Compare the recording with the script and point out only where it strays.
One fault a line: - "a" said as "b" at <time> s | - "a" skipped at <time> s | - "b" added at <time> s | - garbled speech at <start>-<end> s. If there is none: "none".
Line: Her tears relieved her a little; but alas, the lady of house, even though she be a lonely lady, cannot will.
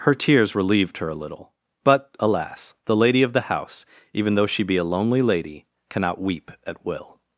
- "the" added at 3.3 s
- "weep at" added at 6.2 s